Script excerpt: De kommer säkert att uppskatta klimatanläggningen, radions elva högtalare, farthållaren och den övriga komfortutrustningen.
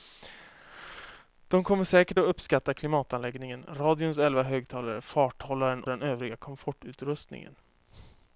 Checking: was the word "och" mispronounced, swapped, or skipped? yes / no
yes